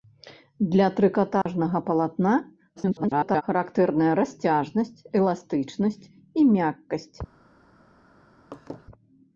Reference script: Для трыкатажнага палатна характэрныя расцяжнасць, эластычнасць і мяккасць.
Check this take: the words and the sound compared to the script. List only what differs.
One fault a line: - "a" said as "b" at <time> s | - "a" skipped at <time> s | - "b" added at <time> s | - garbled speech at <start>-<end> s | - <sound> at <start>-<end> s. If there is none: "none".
- dropout at 1.4-1.5 s
- garbled speech at 2.8-3.4 s
- laugh at 8.5-8.9 s